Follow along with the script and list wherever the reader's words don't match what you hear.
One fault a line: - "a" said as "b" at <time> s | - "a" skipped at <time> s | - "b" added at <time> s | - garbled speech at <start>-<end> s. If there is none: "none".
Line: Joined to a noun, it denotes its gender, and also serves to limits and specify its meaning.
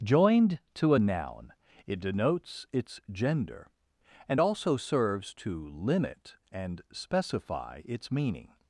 - "limits" said as "limit" at 5.7 s